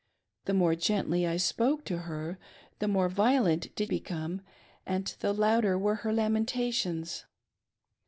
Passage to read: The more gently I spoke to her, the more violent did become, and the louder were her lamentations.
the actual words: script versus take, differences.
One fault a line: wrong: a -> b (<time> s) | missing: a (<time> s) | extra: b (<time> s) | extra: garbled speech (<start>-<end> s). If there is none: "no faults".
no faults